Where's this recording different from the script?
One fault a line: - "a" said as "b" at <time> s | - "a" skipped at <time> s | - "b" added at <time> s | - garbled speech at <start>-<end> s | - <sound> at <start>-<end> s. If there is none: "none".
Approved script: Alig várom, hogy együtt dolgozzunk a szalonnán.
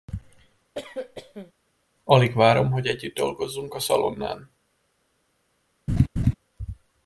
- cough at 0.7-1.5 s
- laugh at 5.9-6.3 s